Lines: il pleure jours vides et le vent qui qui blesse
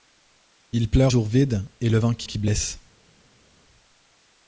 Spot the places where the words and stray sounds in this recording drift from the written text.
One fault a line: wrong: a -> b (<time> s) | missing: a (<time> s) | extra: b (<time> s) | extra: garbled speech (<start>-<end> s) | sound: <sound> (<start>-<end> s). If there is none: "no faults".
no faults